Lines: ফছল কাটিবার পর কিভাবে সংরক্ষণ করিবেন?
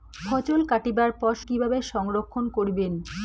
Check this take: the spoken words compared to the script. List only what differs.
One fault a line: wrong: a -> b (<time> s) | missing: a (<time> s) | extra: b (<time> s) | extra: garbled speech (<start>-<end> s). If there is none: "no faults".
no faults